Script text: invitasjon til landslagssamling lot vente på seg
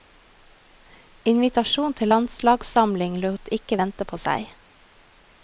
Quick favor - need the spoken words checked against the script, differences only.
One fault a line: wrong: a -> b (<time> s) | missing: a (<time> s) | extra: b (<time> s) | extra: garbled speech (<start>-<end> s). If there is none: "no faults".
extra: ikke (3.6 s)